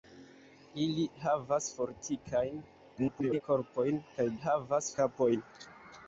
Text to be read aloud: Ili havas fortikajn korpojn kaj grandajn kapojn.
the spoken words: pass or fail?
fail